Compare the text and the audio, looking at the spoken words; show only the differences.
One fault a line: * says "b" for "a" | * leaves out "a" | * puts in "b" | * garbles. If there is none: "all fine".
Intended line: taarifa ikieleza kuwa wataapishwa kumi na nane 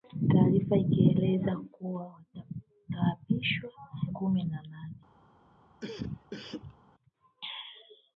all fine